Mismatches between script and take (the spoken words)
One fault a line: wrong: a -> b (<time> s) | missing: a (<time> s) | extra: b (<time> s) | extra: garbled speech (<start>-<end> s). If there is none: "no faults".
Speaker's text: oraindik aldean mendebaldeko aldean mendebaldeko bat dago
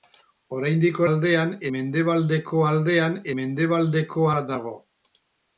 no faults